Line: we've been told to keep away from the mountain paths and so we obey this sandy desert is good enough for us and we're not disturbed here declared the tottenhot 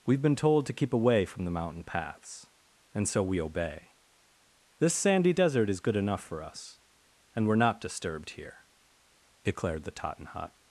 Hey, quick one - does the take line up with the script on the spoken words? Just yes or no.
yes